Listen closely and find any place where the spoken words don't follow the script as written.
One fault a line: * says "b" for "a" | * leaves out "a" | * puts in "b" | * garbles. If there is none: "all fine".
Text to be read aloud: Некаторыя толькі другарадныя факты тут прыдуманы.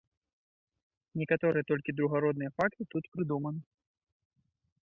all fine